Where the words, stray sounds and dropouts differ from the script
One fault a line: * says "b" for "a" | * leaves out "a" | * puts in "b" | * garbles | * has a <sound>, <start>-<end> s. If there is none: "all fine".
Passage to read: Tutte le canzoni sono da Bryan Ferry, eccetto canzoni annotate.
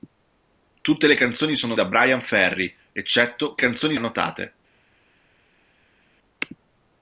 all fine